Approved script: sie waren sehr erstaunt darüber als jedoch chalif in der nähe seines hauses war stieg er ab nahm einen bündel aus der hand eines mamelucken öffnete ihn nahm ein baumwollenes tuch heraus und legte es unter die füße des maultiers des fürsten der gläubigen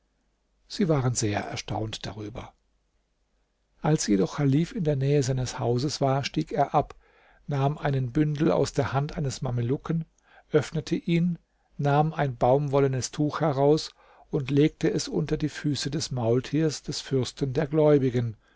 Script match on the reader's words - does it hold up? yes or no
yes